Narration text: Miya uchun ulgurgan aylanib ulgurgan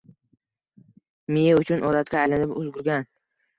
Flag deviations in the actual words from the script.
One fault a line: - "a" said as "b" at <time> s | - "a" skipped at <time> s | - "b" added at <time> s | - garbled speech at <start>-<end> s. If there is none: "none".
- "ulgurgan" said as "odatga" at 1.9 s